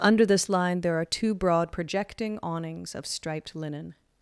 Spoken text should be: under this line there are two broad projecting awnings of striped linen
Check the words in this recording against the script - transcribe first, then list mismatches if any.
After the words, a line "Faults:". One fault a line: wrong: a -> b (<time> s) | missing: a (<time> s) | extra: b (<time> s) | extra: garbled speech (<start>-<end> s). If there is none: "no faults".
under this line there are two broad projecting awnings of striped linen
Faults:
no faults